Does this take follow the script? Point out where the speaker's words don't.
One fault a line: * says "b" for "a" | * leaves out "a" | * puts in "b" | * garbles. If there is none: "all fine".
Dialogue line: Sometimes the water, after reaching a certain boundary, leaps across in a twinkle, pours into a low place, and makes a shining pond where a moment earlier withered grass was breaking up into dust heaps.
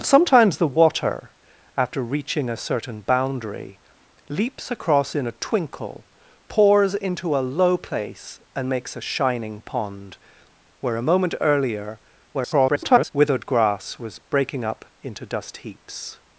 * garbles